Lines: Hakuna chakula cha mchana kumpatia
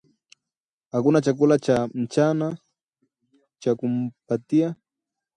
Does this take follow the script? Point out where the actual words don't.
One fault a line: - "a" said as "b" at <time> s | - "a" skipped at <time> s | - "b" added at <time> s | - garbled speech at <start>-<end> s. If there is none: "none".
- "cha" added at 3.6 s